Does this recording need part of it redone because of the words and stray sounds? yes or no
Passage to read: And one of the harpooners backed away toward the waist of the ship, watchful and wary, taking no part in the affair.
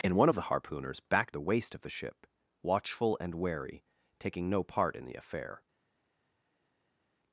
yes